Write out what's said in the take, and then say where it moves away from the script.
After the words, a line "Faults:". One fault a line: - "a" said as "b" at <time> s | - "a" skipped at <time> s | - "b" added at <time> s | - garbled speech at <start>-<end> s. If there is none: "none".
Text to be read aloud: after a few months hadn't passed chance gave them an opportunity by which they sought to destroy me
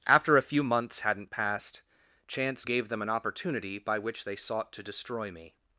after a few months hadn't passed chance gave them an opportunity by which they sought to destroy me
Faults:
none